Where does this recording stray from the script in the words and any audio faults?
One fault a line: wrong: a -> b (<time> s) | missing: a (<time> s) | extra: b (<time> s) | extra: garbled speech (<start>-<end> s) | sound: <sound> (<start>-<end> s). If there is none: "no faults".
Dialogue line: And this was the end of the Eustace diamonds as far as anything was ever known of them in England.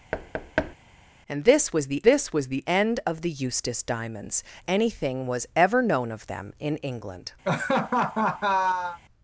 sound: thud (0.1-0.8 s)
extra: this was the (2.0 s)
missing: as far as (4.4 s)
sound: laugh (7.4-9.0 s)